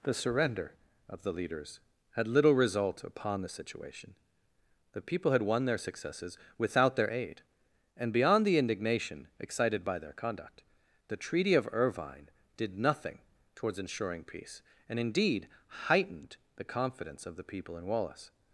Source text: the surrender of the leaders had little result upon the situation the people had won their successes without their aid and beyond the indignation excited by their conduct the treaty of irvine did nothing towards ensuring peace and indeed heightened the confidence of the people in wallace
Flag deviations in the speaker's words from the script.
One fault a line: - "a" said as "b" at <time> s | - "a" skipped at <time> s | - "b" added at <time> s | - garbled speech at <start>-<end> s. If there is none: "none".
none